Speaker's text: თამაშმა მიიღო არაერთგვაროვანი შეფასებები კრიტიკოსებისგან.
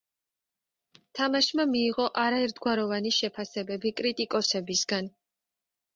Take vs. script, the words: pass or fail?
pass